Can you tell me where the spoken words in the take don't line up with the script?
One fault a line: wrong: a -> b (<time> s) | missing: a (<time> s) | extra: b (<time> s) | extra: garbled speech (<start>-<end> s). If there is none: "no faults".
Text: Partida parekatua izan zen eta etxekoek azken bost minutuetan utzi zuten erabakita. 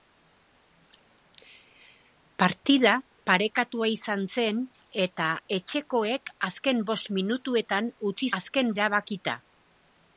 wrong: zuten -> azken (8.4 s)